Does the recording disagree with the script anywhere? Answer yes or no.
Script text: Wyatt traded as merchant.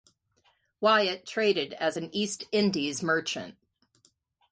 yes